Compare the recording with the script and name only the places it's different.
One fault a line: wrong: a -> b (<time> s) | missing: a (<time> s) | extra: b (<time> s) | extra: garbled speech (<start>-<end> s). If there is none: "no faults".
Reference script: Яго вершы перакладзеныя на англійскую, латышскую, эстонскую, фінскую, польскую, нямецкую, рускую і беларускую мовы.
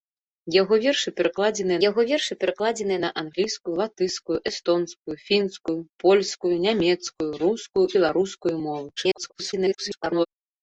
extra: яго вершы перакладзеныя (1.9 s)
missing: і (7.9 s)
extra: garbled speech (9.0-10.3 s)